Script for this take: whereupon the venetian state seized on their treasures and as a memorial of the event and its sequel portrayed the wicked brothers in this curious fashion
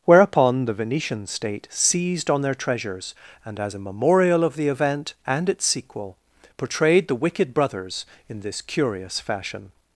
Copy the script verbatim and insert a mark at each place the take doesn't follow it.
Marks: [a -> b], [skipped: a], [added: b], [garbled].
whereupon the venetian state seized on their treasures and as a memorial of the event and its sequel portrayed the wicked brothers in this curious fashion